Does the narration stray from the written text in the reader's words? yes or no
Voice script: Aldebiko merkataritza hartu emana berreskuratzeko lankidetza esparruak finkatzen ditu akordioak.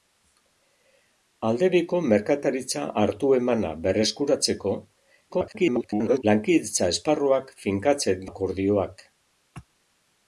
yes